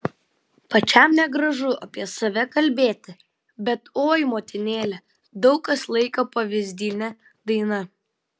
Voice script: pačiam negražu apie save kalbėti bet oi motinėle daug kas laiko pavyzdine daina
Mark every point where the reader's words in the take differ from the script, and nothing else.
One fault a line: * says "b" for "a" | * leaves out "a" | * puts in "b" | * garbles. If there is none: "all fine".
all fine